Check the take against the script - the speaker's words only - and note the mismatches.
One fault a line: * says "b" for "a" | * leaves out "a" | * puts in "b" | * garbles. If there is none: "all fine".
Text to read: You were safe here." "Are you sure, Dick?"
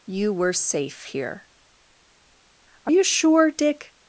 all fine